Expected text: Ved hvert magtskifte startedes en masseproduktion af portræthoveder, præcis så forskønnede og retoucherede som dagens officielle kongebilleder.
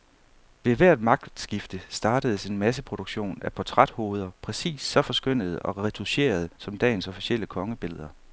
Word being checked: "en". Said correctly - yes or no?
yes